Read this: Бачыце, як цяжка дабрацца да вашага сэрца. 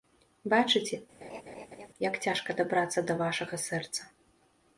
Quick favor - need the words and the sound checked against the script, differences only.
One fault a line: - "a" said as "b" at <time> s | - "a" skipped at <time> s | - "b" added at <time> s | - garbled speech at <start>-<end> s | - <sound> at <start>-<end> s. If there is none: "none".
- laugh at 1.2-1.9 s